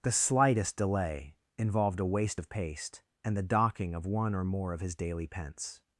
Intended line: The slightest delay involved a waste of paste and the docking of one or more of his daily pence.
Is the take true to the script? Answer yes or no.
yes